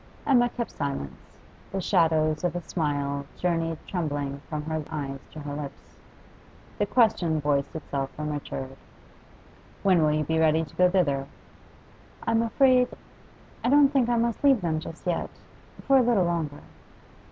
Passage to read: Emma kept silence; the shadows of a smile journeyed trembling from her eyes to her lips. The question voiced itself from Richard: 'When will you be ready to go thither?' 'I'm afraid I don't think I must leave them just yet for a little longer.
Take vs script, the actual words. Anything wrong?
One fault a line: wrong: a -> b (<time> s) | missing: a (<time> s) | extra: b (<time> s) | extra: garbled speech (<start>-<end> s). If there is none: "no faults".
no faults